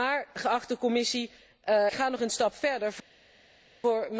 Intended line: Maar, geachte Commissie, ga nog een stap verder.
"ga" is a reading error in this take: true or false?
false